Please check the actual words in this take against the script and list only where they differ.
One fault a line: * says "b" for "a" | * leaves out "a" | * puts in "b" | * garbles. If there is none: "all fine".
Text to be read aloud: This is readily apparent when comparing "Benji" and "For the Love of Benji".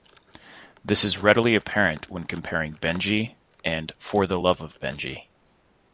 all fine